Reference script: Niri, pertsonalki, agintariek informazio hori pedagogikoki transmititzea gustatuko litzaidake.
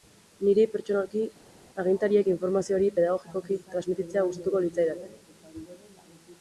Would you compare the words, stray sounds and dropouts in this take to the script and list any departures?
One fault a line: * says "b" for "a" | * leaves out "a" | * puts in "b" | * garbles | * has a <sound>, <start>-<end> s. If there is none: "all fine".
all fine